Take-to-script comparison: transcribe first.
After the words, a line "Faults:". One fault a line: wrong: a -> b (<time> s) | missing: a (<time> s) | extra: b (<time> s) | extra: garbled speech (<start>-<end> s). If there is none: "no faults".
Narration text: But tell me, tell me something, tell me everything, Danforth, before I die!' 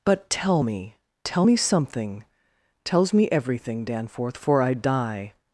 But tell me, tell me something, tells me everything, Danforth, for I die!'
Faults:
wrong: tell -> tells (2.8 s)
wrong: before -> for (4.4 s)